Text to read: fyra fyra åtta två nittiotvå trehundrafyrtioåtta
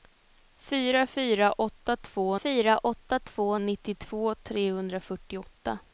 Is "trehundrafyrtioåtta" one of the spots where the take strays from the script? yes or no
no